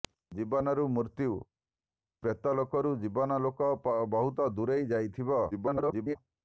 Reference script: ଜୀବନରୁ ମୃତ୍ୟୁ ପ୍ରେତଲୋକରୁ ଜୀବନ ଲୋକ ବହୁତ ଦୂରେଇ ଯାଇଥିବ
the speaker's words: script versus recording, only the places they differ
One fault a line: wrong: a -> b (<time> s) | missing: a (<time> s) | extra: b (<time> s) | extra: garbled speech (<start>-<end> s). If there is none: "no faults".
extra: garbled speech (5.5-6.2 s)